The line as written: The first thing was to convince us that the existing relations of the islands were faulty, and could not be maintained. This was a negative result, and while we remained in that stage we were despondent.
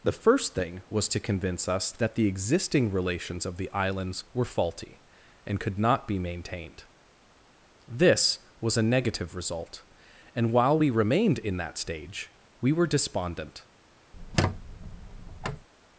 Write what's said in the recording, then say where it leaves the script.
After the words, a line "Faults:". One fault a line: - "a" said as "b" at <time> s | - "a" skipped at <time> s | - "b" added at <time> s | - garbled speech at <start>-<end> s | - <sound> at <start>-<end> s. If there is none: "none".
The first thing was to convince us that the existing relations of the islands were faulty, and could not be maintained. This was a negative result, and while we remained in that stage we were despondent.
Faults:
- squeak at 14.1-15.7 s